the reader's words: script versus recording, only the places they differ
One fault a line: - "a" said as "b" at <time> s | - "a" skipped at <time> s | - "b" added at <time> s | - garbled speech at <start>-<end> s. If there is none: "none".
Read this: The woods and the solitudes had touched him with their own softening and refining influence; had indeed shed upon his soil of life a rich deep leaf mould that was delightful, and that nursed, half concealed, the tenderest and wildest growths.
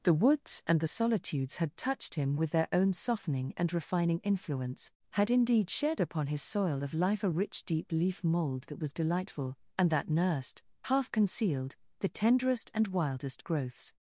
none